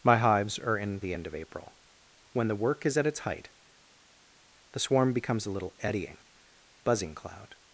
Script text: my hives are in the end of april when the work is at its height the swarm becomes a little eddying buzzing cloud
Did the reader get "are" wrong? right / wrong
right